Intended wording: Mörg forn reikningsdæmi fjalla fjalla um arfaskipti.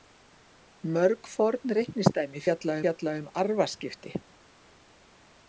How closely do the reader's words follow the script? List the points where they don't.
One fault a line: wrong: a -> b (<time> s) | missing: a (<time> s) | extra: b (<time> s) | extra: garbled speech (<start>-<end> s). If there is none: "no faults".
no faults